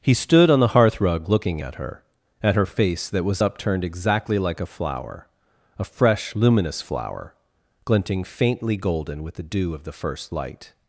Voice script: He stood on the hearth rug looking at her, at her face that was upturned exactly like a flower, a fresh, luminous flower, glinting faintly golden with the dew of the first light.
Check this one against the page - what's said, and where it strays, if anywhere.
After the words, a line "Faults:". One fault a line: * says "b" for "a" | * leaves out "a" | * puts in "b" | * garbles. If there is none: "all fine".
He stood on the hearth rug looking at her, at her face that was upturned exactly like a flower, a fresh, luminous flower, glinting faintly golden with the dew of the first light.
Faults:
all fine